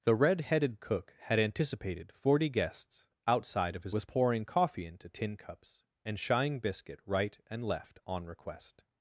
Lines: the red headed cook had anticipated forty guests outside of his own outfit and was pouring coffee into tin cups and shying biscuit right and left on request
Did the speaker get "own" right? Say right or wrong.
wrong